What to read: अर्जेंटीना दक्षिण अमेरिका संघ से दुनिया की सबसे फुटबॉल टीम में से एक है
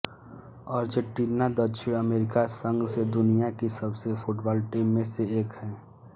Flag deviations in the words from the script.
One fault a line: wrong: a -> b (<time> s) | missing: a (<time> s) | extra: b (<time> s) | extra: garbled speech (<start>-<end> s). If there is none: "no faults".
no faults